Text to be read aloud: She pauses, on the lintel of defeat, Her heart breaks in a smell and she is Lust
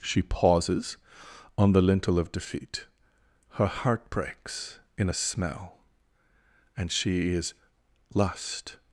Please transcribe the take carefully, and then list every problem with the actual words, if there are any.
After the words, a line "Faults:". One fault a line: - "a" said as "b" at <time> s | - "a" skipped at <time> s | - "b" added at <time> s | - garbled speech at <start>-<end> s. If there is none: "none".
She pauses, on the lintel of defeat, Her heart breaks in a smell and she is Lust
Faults:
none